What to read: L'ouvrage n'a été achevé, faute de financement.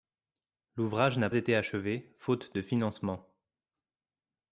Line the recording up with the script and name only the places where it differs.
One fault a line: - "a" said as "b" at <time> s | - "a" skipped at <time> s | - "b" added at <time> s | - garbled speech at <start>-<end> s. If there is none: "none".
none